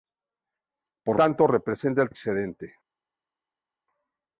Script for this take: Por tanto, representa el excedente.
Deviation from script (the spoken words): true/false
false